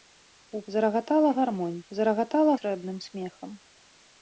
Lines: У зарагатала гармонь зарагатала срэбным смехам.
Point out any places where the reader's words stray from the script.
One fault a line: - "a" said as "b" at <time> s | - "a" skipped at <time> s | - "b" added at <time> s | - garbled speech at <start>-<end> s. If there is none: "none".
none